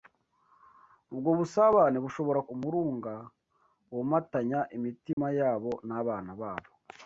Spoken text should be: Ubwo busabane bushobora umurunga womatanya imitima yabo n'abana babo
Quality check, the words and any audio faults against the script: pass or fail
fail